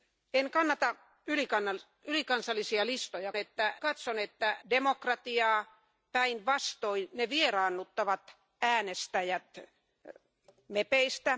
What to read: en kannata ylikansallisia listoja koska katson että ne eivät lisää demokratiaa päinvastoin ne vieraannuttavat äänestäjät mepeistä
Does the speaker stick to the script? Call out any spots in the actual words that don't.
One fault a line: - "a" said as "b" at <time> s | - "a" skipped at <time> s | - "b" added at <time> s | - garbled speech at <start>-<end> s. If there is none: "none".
- "koska" said as "että" at 3.4 s
- "ne eivät lisää" skipped at 4.6 s